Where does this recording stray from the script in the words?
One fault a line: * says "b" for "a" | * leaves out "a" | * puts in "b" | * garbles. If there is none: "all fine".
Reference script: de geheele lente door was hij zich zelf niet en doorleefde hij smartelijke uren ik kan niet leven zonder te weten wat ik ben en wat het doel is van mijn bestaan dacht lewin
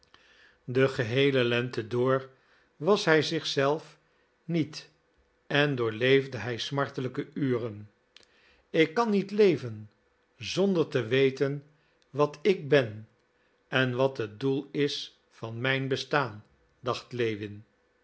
all fine